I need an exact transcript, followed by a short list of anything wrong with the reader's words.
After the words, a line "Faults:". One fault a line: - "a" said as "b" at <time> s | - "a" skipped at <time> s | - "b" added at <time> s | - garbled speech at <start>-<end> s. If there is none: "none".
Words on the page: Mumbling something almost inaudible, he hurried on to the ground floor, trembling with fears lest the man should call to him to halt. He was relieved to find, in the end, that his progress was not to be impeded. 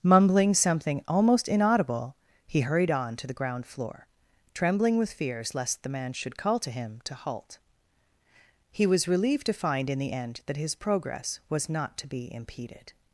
Mumbling something almost inaudible, he hurried on to the ground floor, trembling with fears lest the man should call to him to halt. He was relieved to find, in the end, that his progress was not to be impeded.
Faults:
none